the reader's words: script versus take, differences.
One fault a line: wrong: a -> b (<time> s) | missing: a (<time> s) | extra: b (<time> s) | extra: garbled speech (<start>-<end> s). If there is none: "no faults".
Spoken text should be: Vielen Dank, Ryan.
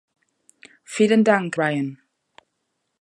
no faults